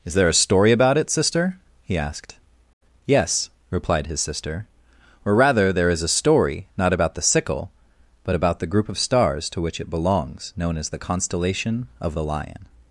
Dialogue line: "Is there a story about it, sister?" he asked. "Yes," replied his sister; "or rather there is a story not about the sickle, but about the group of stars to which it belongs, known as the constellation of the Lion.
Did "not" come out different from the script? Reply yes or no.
no